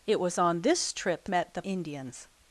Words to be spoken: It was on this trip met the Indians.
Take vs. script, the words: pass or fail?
pass